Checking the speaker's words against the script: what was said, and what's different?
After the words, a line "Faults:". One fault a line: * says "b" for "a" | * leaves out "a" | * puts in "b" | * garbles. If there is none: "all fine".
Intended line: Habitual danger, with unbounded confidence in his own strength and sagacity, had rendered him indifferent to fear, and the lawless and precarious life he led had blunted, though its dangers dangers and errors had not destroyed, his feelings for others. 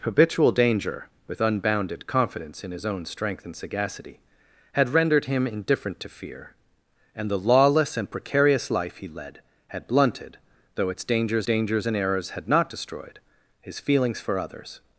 Habitual danger, with unbounded confidence in his own strength and sagacity, had rendered him indifferent to fear, and the lawless and precarious life he led had blunted, though its dangers dangers and errors had not destroyed, his feelings for others.
Faults:
all fine